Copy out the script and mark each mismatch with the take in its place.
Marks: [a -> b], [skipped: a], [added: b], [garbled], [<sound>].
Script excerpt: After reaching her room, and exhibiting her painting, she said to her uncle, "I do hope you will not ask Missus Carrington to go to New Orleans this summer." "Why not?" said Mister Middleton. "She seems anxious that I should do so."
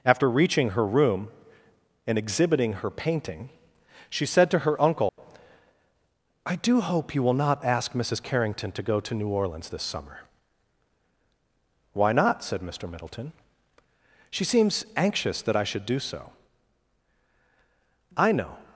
After reaching her room, and exhibiting her painting, she said to her uncle, [dropout] "I do hope you will not ask Missus Carrington to go to New Orleans this summer." "Why not?" said Mister Middleton. "She seems anxious that I should do so." [added: I know]